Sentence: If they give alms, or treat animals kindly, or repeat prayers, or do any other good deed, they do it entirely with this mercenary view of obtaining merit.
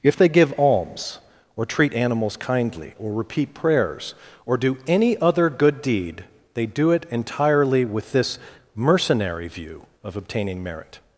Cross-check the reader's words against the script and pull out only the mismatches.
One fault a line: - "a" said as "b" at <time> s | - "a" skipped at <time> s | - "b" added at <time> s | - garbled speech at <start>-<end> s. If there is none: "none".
none